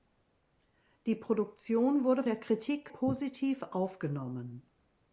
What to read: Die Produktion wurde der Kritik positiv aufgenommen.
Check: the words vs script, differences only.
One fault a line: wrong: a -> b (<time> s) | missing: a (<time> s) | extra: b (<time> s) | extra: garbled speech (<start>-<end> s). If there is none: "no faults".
no faults